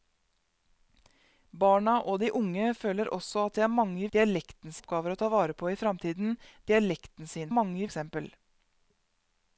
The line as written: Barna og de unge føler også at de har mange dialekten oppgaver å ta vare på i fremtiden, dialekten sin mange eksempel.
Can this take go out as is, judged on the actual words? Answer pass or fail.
pass